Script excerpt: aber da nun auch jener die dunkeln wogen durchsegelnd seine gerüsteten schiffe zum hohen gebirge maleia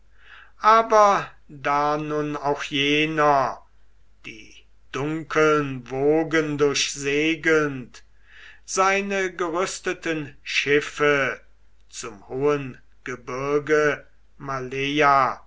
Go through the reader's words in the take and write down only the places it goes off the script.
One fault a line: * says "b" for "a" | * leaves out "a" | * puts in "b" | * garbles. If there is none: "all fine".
all fine